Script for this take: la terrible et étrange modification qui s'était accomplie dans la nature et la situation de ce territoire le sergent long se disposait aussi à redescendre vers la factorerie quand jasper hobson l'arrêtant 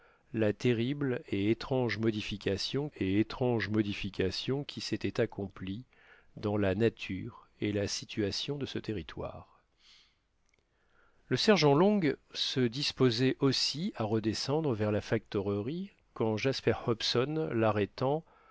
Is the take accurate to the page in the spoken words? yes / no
no